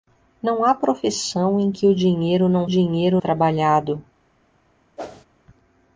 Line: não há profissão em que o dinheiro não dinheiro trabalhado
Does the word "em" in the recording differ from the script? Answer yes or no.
no